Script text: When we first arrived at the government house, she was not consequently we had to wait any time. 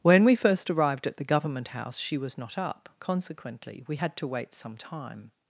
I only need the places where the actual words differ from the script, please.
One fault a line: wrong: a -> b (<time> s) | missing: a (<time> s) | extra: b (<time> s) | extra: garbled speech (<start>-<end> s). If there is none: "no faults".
extra: up (2.6 s)
wrong: any -> some (4.5 s)